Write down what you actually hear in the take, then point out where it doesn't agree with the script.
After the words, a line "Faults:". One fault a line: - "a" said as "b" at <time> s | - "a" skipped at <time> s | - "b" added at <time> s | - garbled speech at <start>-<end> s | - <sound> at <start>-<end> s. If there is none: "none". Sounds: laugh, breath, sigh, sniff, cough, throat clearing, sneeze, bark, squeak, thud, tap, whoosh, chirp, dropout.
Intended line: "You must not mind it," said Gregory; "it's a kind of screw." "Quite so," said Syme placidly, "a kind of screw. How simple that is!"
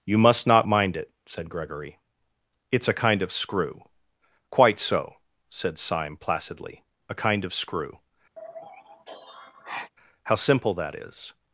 "You must not mind it," said Gregory; "it's a kind of screw." "Quite so," said Syme placidly, "a kind of screw. How simple that is!"
Faults:
- sigh at 8.4-9.9 s